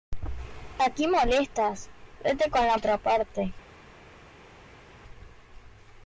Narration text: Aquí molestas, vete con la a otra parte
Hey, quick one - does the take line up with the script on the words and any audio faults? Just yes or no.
yes